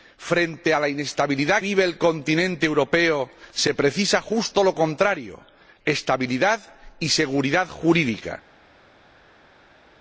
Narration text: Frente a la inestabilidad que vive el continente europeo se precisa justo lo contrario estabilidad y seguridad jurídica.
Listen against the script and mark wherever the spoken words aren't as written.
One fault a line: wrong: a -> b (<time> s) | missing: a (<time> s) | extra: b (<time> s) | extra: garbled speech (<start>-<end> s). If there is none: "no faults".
missing: que (1.6 s)